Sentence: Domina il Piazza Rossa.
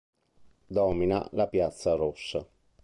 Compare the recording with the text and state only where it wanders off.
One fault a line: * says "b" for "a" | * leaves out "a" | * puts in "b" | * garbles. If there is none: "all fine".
* says "la" for "il"